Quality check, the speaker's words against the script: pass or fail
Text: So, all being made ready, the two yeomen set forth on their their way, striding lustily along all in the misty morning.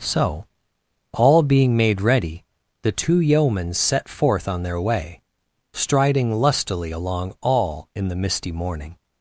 fail